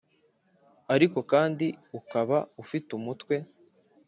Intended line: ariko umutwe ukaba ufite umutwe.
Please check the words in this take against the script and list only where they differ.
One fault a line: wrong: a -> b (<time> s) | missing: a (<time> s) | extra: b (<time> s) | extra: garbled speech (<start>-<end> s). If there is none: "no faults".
wrong: umutwe -> kandi (1.3 s)